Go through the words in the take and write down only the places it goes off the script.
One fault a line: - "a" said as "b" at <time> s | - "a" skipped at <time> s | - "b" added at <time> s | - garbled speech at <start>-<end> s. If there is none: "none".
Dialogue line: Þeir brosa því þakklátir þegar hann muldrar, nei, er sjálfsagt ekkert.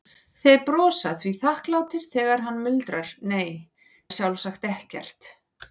none